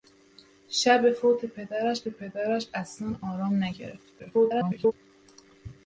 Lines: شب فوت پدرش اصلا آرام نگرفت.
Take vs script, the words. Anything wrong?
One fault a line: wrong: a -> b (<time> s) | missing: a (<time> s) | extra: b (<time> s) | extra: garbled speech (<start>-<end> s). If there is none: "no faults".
extra: پدرش (2.1 s)
extra: garbled speech (4.2-4.9 s)